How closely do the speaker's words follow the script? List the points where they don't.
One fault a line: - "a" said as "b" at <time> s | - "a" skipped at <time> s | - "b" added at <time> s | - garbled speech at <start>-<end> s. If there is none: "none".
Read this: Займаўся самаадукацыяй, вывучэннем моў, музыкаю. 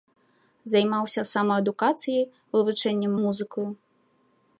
- "моў" skipped at 3.1 s